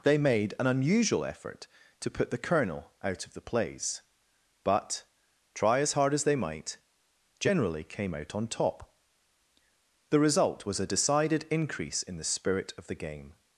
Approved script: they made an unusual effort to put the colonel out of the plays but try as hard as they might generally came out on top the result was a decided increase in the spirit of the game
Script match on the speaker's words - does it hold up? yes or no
yes